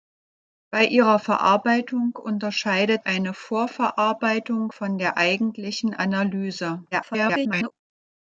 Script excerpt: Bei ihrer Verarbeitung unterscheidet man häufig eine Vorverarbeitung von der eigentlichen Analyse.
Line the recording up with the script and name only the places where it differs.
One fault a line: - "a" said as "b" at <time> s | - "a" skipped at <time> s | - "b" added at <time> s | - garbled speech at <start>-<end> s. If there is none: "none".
- "man häufig" skipped at 3.1 s
- garbled speech at 6.9-7.7 s